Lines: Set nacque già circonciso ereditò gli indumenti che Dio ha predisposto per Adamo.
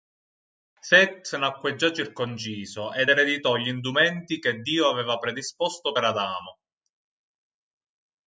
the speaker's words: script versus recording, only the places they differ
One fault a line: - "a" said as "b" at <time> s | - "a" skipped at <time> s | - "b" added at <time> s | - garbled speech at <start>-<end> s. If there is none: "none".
- "ed" added at 2.9 s
- "ha" said as "aveva" at 4.9 s